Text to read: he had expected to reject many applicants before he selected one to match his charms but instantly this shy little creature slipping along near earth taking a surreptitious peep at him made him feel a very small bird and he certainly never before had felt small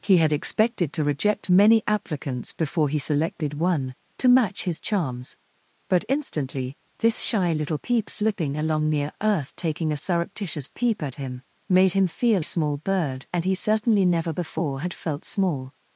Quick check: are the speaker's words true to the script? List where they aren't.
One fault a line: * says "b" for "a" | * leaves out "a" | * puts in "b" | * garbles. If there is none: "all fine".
* says "peep" for "creature"
* leaves out "a very"